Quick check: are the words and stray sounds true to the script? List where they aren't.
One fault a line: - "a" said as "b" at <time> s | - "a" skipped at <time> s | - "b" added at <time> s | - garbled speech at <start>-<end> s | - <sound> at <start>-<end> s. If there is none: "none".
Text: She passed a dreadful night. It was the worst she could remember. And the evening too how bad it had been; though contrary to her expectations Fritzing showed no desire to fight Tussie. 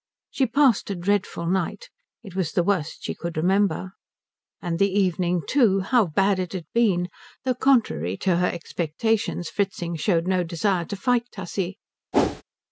- whoosh at 12.1-12.4 s